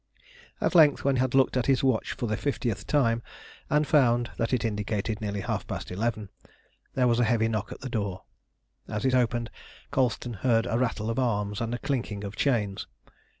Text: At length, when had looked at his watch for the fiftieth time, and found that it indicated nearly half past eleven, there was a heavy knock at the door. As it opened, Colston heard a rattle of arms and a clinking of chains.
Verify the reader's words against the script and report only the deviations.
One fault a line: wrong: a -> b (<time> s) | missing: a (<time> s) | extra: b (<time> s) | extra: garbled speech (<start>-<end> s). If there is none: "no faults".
no faults